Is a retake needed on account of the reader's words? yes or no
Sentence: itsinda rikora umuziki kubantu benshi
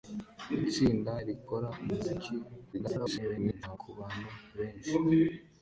yes